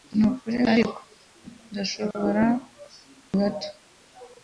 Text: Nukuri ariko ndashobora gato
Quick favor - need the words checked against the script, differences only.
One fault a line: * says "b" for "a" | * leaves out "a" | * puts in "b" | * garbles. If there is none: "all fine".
all fine